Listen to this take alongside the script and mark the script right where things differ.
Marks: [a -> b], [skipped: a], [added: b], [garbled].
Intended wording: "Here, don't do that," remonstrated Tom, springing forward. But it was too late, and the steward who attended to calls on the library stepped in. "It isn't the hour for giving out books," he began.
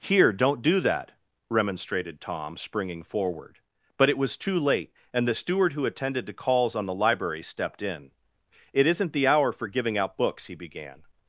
"Here, don't do that," remonstrated Tom, springing forward. But it was too late, and the steward who attended to calls on the library stepped in. "It isn't the hour for giving out books," he began.